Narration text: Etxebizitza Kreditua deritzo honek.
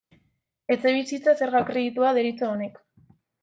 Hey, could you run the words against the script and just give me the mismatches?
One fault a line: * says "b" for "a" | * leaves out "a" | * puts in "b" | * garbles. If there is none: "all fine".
* puts in "Zerga"